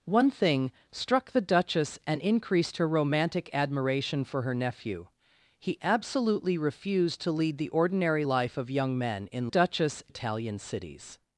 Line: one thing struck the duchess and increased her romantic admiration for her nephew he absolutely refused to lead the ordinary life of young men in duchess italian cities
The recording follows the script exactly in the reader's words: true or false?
true